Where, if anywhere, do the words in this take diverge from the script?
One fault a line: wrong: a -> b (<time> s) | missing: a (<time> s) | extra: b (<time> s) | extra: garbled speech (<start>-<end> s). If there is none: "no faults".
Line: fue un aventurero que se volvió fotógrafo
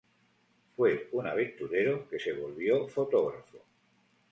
no faults